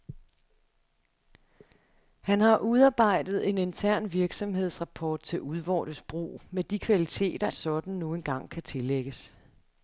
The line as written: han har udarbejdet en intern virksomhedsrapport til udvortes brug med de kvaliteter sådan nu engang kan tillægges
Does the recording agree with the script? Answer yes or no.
yes